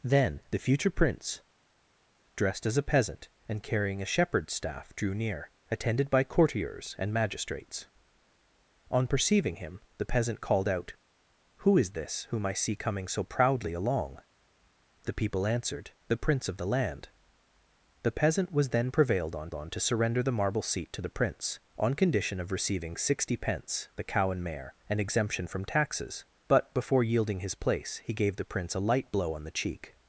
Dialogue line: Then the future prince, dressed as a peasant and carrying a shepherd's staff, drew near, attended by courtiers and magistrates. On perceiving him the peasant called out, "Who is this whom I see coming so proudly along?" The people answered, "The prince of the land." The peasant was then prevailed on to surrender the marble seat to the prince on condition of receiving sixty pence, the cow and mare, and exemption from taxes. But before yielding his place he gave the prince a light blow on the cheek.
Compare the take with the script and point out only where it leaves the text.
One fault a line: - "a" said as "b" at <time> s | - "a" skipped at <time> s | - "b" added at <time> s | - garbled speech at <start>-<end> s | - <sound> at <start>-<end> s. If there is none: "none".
- "on" added at 19.5 s